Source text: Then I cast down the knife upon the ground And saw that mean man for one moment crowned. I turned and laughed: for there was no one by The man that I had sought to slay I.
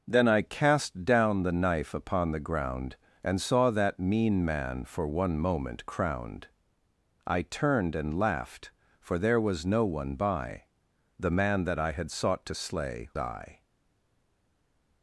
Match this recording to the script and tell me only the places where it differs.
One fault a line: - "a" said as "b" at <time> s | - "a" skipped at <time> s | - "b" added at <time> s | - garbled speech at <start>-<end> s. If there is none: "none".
none